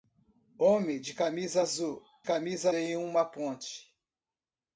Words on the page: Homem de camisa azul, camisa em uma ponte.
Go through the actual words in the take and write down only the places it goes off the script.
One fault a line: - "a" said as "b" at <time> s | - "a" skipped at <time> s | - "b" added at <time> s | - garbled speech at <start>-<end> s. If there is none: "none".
none